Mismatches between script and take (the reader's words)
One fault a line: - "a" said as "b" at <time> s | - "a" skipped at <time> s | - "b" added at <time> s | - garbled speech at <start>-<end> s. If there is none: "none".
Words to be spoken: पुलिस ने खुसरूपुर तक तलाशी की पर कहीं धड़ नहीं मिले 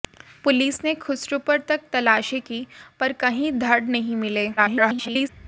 - garbled speech at 4.6-5.3 s